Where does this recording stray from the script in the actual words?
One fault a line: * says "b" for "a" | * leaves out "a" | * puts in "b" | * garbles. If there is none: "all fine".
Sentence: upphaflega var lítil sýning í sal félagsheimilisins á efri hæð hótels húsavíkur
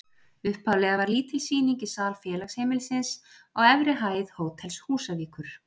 all fine